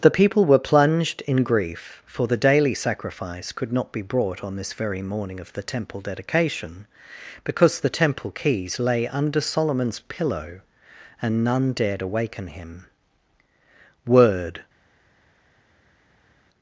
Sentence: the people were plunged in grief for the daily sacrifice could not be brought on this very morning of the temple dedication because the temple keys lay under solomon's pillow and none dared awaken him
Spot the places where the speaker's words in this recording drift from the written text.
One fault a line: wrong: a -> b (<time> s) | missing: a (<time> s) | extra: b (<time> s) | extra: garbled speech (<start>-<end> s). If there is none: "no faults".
extra: word (14.1 s)